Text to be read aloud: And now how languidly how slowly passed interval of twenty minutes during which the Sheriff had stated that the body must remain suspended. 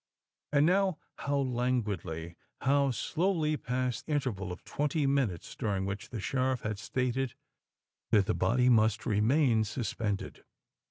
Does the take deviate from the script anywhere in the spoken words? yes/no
no